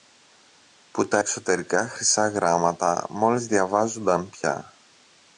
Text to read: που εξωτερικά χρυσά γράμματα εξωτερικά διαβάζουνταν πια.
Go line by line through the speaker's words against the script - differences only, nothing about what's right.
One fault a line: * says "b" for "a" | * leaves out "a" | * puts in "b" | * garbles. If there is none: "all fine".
* puts in "τα"
* says "μόλις" for "εξωτερικά"